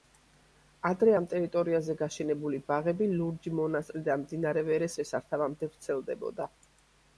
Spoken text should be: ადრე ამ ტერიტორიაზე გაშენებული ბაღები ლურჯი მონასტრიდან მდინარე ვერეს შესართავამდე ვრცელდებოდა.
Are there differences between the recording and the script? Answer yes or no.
no